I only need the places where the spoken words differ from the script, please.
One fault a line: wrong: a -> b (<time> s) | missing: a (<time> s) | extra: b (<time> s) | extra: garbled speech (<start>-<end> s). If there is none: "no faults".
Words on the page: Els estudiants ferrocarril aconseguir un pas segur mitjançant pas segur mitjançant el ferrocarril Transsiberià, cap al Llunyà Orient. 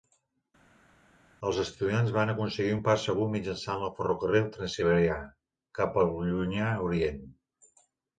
wrong: ferrocarril -> van (2.2 s)
missing: pas segur mitjançant (3.8 s)